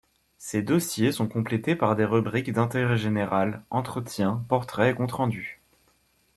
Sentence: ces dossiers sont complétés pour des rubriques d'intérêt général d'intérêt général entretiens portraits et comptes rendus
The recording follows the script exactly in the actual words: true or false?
false